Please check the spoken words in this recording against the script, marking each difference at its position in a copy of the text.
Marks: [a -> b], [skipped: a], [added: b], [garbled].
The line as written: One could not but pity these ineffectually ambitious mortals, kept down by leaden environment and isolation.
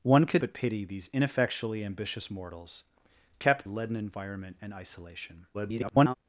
One could [skipped: not] but pity these ineffectually ambitious mortals, kept [skipped: down by] leaden environment and isolation. [garbled]